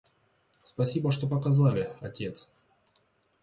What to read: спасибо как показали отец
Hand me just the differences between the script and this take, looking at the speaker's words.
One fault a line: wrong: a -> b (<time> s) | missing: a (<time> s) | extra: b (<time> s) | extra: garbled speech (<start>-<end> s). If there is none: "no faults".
wrong: как -> что (1.1 s)